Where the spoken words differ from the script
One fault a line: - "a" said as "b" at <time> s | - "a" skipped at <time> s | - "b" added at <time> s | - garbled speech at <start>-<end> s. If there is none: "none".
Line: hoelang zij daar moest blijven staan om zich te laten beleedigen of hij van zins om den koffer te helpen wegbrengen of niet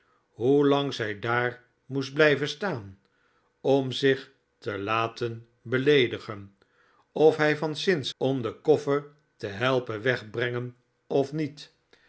none